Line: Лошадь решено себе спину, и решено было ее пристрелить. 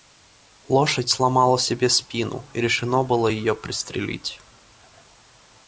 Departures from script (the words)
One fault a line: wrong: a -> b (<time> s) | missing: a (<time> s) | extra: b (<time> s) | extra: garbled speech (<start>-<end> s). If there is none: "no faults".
wrong: решено -> сломала (1.1 s)